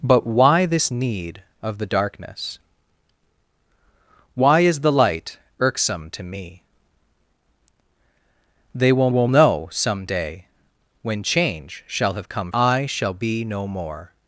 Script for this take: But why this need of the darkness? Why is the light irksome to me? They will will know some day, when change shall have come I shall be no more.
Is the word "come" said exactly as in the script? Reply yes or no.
yes